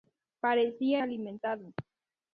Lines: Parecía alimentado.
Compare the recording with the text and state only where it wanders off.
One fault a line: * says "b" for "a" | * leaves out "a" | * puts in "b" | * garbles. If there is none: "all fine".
all fine